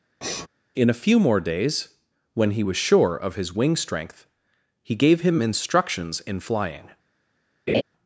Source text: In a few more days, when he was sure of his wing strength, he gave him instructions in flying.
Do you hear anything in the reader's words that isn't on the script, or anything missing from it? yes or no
no